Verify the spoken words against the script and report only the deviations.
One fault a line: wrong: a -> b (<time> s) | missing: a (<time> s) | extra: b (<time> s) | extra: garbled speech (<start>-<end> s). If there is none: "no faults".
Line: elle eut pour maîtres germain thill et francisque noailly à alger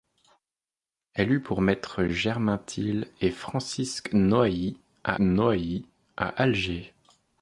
extra: noailly à (5.2 s)